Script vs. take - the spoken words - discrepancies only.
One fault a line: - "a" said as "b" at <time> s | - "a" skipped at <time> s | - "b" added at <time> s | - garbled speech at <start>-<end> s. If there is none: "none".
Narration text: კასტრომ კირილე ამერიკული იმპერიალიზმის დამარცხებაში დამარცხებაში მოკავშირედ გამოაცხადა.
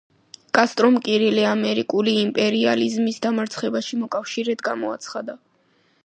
- "დამარცხებაში" skipped at 4.0 s